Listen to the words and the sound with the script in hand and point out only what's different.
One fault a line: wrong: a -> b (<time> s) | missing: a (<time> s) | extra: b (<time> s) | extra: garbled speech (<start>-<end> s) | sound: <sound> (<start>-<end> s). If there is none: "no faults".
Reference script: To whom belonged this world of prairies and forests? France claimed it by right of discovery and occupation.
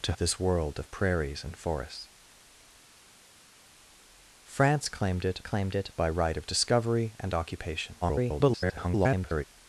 missing: whom belonged (0.1 s)
extra: claimed it (5.4 s)
extra: garbled speech (8.0-9.4 s)